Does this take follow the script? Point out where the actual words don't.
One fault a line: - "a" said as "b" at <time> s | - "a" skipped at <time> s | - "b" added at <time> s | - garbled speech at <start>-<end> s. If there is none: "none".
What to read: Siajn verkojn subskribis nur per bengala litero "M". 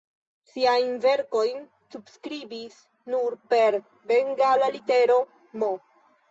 none